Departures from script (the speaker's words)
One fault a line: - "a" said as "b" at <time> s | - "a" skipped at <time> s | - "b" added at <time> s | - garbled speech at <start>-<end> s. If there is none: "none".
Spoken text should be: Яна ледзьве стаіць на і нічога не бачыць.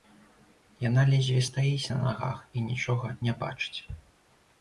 - "нагах" added at 2.0 s